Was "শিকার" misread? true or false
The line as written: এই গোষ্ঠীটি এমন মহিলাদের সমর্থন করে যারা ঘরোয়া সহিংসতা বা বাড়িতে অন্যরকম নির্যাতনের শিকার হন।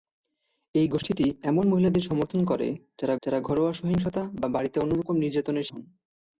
true